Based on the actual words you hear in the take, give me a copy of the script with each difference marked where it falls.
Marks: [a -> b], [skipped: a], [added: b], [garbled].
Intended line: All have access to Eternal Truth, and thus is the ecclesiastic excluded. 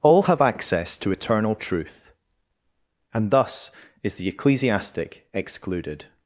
All have access to Eternal Truth, and thus is the ecclesiastic excluded.